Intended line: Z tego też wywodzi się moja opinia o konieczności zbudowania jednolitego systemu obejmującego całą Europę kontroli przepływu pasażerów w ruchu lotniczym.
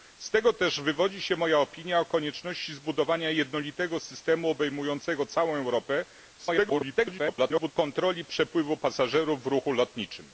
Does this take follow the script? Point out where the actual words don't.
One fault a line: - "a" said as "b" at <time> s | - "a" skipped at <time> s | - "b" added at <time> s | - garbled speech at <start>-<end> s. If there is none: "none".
- garbled speech at 6.4-7.7 s